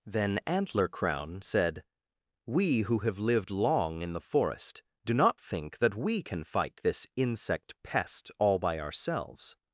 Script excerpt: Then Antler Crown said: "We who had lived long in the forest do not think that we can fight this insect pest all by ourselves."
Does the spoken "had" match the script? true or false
false